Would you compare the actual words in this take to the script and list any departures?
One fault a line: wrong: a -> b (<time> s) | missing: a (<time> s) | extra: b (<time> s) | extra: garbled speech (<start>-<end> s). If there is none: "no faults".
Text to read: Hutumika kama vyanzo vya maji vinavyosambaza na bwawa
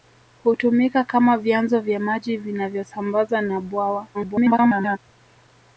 extra: garbled speech (4.1-5.0 s)